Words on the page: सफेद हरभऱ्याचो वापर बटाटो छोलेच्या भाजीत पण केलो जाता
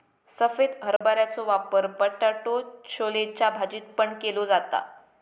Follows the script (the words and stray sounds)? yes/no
no